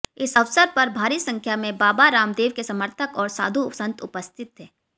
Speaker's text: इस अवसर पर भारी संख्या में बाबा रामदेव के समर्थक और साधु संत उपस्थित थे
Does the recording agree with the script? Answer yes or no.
yes